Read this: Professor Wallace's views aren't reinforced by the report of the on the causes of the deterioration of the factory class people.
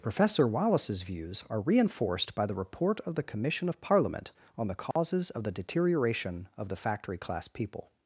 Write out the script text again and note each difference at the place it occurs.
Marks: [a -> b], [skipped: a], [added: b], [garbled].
Professor Wallace's views [aren't -> are] reinforced by the report of the [added: commission of Parliament] on the causes of the deterioration of the factory class people.